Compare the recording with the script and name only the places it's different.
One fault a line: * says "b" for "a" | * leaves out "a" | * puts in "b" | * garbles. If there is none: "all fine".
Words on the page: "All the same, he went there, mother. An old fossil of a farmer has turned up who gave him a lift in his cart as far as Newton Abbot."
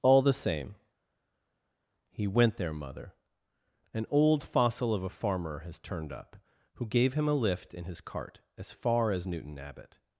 all fine